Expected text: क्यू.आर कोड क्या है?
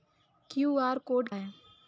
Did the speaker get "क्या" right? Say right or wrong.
wrong